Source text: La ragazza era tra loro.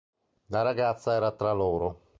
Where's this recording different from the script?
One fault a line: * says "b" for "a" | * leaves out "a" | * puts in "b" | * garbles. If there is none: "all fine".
all fine